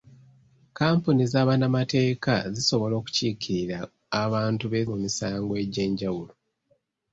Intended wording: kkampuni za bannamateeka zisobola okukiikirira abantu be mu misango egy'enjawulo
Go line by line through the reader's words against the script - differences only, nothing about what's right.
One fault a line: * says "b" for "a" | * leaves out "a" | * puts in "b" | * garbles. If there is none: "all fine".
all fine